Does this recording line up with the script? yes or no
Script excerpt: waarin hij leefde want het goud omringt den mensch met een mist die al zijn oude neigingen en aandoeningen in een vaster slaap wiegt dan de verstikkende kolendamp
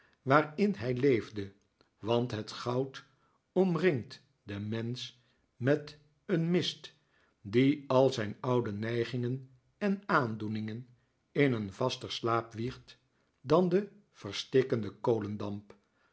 yes